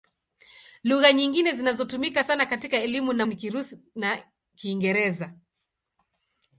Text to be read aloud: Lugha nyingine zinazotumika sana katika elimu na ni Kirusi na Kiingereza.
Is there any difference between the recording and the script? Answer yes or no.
no